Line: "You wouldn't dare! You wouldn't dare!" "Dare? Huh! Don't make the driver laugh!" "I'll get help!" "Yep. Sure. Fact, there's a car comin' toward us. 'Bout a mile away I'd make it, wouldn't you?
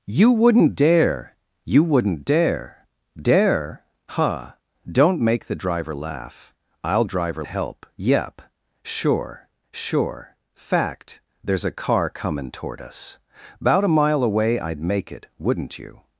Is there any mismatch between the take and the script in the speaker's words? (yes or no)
yes